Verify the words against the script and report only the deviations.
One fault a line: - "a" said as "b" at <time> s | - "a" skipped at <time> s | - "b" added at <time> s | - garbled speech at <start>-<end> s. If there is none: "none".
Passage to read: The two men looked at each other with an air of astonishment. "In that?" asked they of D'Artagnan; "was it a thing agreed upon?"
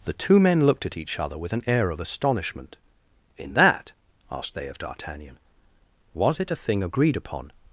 none